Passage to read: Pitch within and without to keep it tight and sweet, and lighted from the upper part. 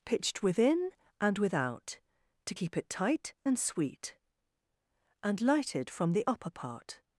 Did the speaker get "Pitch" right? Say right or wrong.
wrong